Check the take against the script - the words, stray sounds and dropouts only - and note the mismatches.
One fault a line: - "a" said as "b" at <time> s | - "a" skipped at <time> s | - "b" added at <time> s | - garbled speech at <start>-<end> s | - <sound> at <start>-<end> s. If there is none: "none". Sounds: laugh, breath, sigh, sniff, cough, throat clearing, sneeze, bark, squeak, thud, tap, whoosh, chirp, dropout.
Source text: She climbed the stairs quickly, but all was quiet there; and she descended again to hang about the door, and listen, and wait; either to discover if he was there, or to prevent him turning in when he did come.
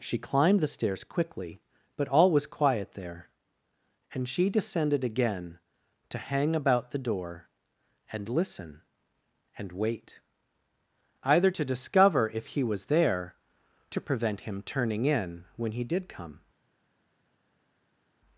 - "or" skipped at 13.3 s